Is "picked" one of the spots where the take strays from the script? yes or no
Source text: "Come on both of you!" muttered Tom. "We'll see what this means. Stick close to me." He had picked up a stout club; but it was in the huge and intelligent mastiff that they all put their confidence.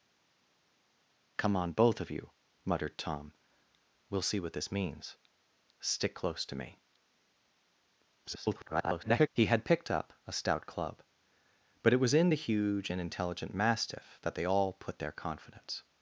no